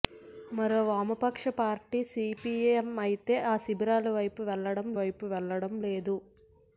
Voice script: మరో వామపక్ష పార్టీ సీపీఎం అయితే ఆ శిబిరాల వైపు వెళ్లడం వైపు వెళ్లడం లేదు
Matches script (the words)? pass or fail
pass